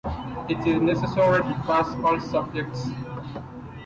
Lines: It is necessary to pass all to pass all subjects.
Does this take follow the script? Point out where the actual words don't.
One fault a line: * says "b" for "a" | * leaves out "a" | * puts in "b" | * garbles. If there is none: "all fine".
* leaves out "to pass all"